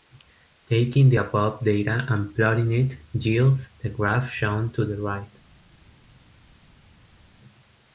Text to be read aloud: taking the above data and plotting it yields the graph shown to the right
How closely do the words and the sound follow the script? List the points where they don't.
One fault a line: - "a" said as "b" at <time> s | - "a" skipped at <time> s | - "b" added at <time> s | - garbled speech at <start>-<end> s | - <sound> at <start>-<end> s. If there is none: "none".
none